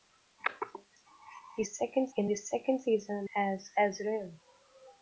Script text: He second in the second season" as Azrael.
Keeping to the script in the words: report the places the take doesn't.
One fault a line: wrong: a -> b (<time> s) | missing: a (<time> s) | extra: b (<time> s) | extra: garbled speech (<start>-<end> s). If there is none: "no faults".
no faults